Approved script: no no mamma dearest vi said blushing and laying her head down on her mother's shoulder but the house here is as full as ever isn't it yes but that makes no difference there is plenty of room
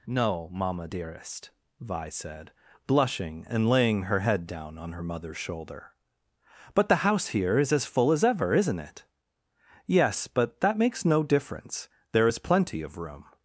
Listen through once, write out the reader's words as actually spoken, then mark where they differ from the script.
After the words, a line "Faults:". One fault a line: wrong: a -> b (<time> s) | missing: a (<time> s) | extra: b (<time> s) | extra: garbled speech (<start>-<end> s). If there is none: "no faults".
no mamma dearest vi said blushing and laying her head down on her mother's shoulder but the house here is as full as ever isn't it yes but that makes no difference there is plenty of room
Faults:
missing: no (0.5 s)